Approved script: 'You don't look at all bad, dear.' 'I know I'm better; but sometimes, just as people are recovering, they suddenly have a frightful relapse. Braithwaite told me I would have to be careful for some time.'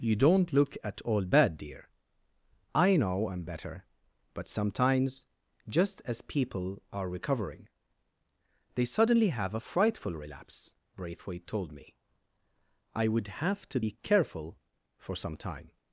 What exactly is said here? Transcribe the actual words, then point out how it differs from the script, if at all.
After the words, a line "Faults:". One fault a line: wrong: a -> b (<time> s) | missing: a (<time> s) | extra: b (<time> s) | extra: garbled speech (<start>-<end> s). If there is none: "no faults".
'You don't look at all bad, dear.' 'I know I'm better; but sometimes, just as people are recovering, they suddenly have a frightful relapse. Braithwaite told me I would have to be careful for some time.'
Faults:
no faults